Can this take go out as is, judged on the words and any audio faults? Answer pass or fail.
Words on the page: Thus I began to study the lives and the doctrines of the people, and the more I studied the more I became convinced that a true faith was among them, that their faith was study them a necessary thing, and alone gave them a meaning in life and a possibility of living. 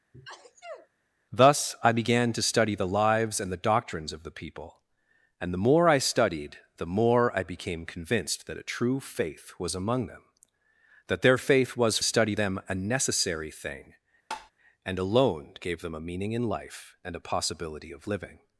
fail